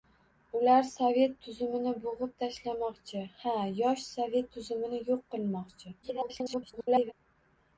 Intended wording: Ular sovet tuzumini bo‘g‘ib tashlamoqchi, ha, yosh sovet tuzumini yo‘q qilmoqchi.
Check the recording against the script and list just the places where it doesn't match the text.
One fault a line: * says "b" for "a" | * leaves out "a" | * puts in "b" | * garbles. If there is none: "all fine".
* garbles